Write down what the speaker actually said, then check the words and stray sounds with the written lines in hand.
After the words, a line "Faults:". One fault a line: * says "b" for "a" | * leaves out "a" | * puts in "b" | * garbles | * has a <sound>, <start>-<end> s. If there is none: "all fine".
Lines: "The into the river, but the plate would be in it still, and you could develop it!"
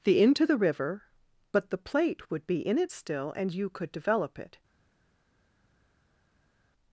"The into the river, but the plate would be in it still, and you could develop it!"
Faults:
all fine